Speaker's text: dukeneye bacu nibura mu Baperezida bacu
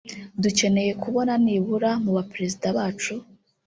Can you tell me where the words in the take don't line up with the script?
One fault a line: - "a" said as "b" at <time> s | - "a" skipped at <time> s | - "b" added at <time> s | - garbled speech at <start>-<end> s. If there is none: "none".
- "bacu" said as "kubona" at 1.0 s